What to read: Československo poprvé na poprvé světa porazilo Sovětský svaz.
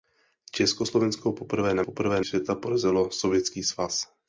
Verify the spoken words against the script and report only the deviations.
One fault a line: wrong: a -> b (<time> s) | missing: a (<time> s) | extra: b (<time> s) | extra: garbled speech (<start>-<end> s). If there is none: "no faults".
no faults